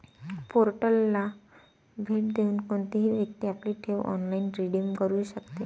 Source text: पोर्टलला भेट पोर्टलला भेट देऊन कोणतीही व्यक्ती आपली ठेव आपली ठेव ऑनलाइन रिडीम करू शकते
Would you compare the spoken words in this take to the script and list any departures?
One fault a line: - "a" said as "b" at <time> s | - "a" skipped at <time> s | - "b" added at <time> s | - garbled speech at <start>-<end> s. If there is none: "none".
- "पोर्टलला भेट" skipped at 2.3 s
- "आपली ठेव" skipped at 4.0 s